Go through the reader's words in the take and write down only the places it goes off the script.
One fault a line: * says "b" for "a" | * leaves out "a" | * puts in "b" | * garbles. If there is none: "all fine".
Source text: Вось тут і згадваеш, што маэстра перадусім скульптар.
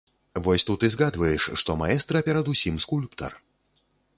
all fine